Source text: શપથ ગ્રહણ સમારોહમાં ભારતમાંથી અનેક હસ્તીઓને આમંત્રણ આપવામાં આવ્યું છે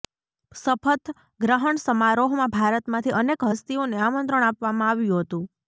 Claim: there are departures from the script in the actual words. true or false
true